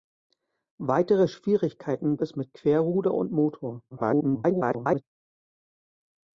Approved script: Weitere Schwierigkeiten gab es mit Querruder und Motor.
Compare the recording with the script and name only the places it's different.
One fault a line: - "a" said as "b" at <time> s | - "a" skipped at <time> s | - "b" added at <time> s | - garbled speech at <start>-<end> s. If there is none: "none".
- "gab" skipped at 2.2 s
- garbled speech at 3.9-5.0 s